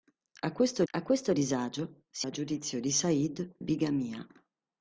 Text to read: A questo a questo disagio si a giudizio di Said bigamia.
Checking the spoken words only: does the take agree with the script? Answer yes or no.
yes